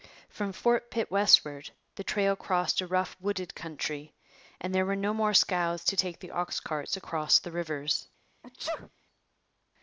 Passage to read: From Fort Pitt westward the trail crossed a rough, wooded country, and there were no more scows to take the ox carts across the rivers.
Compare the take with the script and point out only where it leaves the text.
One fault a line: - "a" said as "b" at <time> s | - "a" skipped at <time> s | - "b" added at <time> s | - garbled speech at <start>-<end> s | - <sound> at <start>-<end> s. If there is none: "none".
- sneeze at 8.4-8.9 s